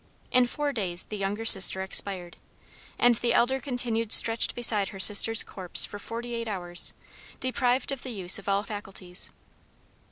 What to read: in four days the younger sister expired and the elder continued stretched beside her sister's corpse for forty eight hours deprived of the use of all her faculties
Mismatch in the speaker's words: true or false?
true